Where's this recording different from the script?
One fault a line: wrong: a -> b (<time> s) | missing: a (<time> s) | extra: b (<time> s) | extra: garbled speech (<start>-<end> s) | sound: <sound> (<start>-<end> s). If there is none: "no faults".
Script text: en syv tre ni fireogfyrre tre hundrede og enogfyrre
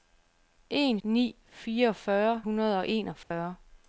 missing: syv tre (1.0 s)
missing: tre (2.4 s)
sound: dropout (3.2-3.3 s)